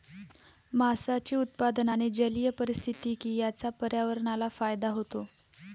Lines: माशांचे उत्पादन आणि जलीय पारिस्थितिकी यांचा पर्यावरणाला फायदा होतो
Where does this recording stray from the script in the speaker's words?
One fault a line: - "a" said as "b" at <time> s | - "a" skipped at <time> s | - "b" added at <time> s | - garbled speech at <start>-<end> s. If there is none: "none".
none